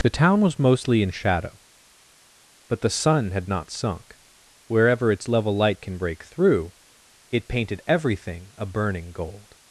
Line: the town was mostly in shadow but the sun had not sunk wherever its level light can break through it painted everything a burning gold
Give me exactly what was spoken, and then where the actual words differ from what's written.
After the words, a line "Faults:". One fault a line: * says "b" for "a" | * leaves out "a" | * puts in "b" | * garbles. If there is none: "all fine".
the town was mostly in shadow but the sun had not sunk wherever its level light can break through it painted everything a burning gold
Faults:
all fine